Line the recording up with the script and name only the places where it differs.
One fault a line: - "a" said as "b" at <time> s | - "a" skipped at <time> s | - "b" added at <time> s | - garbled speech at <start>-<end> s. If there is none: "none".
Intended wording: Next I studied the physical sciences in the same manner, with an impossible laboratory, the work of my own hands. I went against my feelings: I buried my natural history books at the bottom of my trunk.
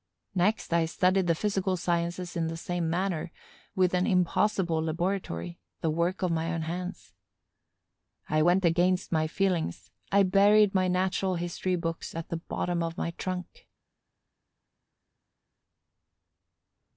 none